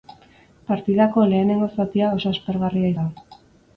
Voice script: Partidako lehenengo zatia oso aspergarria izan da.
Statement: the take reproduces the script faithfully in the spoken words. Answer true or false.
false